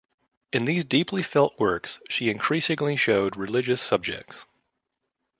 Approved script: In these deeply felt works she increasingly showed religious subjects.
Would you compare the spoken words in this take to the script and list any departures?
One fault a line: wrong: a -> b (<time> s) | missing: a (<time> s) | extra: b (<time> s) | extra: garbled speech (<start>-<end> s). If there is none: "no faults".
no faults